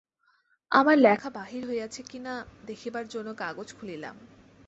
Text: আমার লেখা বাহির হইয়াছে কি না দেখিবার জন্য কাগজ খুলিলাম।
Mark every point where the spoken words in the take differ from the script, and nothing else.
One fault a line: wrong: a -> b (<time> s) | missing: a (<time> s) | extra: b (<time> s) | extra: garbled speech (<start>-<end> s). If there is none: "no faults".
no faults